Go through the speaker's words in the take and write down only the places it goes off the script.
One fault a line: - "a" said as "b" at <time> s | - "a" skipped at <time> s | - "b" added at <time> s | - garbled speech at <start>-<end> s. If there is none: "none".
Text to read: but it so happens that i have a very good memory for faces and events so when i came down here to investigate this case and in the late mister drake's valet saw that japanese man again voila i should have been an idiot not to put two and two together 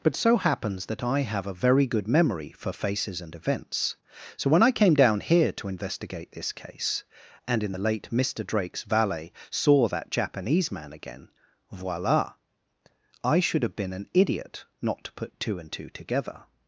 - "it" skipped at 0.1 s